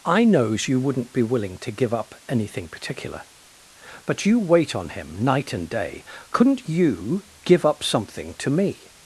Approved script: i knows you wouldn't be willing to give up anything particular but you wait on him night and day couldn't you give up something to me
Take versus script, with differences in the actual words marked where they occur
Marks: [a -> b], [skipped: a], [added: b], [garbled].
i knows you wouldn't be willing to give up anything particular but you wait on him night and day couldn't you give up something to me